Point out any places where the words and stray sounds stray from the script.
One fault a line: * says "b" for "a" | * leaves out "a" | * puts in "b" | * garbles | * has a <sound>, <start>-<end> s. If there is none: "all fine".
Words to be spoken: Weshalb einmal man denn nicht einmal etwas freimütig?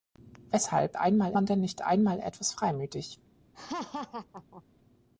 * has a laugh, 3.5-4.6 s